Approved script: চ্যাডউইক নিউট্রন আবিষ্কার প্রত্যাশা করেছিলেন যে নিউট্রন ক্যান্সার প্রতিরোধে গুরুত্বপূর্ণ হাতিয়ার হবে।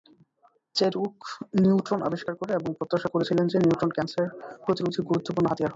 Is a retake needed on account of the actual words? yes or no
yes